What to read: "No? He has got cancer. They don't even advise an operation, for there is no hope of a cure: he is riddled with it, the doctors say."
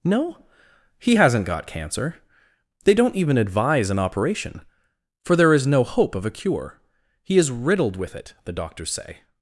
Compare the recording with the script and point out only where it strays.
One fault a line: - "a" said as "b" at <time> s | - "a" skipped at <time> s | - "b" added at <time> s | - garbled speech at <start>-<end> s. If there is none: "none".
- "has" said as "hasn't" at 1.1 s